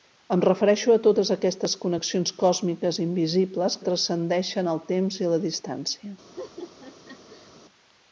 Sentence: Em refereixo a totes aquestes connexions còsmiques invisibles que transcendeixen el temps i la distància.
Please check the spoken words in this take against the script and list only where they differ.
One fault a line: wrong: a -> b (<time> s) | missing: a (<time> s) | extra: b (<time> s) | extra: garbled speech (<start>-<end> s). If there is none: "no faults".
missing: que (3.8 s)